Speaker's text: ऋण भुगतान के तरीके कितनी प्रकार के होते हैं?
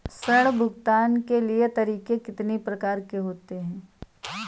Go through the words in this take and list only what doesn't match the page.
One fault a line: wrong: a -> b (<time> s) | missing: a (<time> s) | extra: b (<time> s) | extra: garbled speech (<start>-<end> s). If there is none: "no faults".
no faults